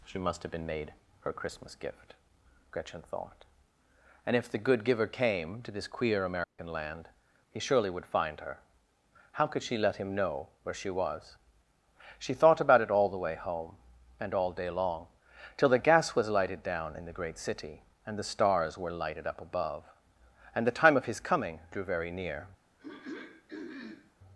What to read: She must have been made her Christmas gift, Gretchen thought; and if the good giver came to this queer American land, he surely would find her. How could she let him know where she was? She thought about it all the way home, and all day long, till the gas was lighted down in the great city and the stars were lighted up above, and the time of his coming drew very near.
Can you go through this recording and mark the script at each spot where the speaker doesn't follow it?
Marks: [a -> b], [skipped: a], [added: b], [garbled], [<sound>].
She must have been made her Christmas gift, Gretchen thought; and if the good giver came to this queer American [dropout] land, he surely would find her. How could she let him know where she was? She thought about it all the way home, and all day long, till the gas was lighted down in the great city and the stars were lighted up above, and the time of his coming drew very near. [throat clearing]